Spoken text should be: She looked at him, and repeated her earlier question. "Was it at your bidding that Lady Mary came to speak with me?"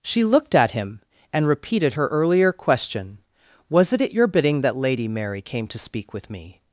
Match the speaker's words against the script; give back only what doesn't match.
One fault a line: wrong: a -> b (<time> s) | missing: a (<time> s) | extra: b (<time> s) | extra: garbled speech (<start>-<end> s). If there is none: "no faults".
no faults